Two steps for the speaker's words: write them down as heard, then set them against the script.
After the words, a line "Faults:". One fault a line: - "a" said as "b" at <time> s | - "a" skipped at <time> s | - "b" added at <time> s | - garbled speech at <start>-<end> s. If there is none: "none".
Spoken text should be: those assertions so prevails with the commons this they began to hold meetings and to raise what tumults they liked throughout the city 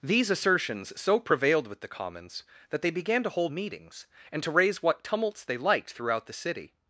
these assertions so prevailed with the commons that they began to hold meetings and to raise what tumults they liked throughout the city
Faults:
- "those" said as "these" at 0.0 s
- "prevails" said as "prevailed" at 1.2 s
- "this" said as "that" at 2.7 s